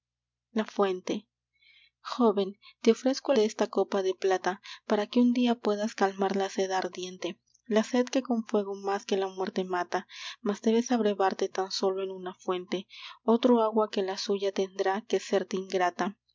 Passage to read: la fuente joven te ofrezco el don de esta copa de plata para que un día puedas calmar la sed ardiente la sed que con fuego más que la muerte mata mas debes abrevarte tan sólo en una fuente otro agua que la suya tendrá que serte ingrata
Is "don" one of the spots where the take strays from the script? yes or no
yes